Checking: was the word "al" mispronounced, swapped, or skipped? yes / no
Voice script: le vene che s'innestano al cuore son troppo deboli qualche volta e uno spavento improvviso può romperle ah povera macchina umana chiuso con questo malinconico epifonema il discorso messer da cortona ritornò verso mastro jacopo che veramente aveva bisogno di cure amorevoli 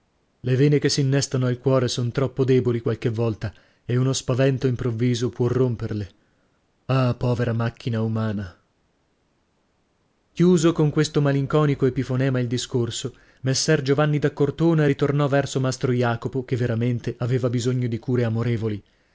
no